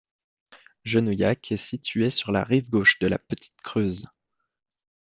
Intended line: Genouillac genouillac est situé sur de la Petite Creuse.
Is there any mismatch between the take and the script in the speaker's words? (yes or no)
yes